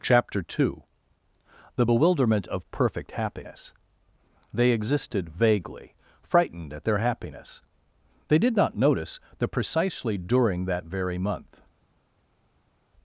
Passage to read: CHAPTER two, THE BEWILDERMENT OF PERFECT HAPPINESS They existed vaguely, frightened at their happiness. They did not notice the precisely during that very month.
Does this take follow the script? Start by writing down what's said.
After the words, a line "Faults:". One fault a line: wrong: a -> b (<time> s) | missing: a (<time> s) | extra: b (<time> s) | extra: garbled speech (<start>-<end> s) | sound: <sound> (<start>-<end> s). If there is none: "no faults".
CHAPTER two, THE BEWILDERMENT OF PERFECT HAPPINESS They existed vaguely, frightened at their happiness. They did not notice the precisely during that very month.
Faults:
no faults